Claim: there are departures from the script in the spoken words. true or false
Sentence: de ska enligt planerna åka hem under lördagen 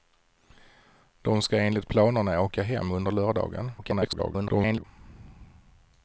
true